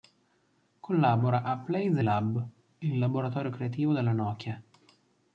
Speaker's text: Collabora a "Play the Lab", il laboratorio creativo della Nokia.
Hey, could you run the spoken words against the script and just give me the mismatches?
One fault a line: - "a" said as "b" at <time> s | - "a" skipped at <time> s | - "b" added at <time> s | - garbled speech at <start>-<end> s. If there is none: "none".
none